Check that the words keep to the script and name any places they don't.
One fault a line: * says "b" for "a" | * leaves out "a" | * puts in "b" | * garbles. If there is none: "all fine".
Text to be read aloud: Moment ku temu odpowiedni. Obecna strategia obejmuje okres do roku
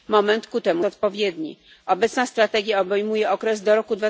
all fine